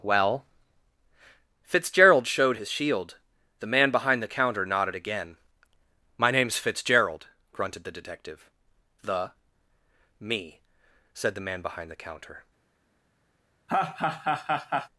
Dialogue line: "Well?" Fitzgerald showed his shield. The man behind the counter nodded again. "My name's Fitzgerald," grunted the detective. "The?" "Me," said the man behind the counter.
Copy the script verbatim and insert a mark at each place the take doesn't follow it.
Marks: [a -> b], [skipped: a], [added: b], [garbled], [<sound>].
"Well?" Fitzgerald showed his shield. The man behind the counter nodded again. "My name's Fitzgerald," grunted the detective. "The?" "Me," said the man behind the counter. [laugh]